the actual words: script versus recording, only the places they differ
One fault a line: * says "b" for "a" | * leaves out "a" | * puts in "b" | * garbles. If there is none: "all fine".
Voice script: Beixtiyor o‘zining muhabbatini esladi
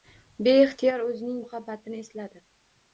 all fine